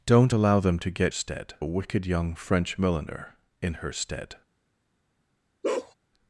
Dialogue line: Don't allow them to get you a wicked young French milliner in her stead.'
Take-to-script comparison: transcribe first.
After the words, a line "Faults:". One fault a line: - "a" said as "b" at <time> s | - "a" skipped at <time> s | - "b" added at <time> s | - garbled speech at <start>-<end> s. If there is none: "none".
Don't allow them to get stead a wicked young French milliner in her stead.'
Faults:
- "you" said as "stead" at 1.1 s